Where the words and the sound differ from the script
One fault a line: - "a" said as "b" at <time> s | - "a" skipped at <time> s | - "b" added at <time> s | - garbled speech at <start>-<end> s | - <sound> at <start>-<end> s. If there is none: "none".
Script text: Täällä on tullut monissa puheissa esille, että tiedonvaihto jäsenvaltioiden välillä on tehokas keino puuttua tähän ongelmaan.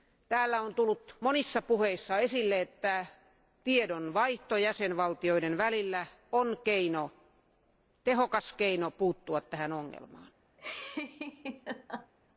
- laugh at 10.6-12.1 s